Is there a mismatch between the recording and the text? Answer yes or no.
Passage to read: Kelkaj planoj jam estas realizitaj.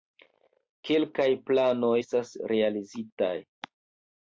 yes